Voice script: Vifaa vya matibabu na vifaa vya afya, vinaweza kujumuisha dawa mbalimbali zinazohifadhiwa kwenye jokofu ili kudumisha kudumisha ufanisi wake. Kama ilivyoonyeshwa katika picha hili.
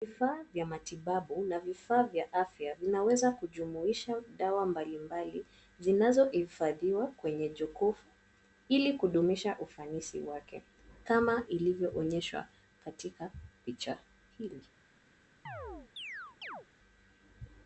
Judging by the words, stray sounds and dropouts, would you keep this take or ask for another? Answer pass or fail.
fail